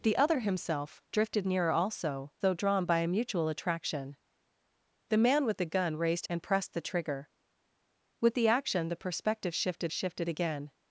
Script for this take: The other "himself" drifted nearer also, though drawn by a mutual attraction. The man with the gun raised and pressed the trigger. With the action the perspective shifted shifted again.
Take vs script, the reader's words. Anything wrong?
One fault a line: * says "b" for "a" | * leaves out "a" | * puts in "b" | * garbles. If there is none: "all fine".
all fine